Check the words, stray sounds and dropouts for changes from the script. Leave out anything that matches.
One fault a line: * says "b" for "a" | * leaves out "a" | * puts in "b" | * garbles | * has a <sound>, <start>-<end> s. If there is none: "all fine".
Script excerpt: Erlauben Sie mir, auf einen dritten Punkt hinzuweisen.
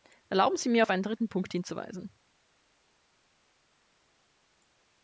all fine